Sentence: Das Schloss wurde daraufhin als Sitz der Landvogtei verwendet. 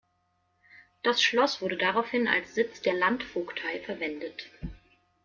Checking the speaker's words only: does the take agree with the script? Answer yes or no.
yes